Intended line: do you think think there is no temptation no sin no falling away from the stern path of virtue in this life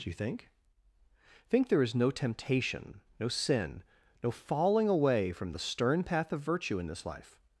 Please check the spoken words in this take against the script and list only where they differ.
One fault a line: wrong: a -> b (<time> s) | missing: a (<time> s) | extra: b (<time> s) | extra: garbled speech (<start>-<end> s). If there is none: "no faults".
no faults